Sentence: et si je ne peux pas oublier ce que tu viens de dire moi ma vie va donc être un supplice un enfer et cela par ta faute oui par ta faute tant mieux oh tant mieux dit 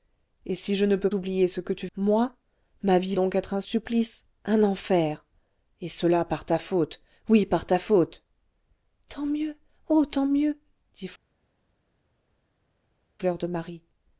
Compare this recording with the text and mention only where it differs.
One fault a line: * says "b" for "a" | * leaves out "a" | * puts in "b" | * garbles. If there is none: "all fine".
* leaves out "pas"
* leaves out "viens de dire"
* leaves out "va"